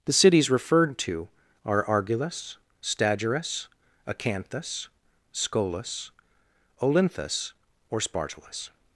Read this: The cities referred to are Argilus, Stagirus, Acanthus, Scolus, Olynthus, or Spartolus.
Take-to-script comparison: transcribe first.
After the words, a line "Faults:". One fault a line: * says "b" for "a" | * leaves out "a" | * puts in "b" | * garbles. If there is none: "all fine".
The cities referred to are Argilus, Stagirus, Acanthus, Scolus, Olynthus, or Spartolus.
Faults:
all fine